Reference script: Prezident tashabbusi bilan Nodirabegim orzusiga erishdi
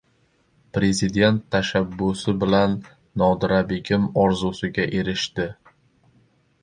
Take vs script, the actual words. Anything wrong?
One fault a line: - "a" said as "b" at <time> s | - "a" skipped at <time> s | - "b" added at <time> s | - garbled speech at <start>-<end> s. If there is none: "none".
none